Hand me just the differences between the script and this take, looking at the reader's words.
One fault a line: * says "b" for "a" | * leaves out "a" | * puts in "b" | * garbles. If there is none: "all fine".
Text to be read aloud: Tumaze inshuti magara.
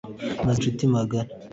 all fine